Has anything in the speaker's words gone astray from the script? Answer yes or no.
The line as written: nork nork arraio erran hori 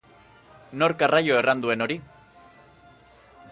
yes